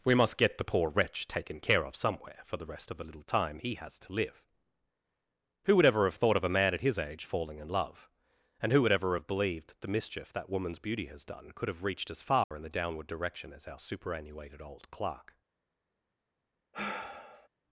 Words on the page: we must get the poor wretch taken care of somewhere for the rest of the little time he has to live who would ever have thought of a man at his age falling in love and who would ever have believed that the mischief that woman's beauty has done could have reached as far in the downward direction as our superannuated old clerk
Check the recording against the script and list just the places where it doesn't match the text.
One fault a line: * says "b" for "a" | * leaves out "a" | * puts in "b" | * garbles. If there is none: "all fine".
all fine